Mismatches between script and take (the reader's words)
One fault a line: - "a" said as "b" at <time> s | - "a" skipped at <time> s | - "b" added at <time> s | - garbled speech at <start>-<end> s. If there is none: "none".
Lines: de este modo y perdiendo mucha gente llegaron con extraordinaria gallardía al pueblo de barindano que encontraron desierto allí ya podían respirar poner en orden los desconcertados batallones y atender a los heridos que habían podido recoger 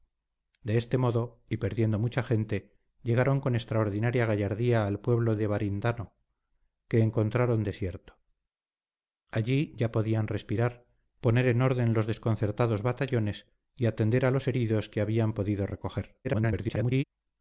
- garbled speech at 16.2-17.0 s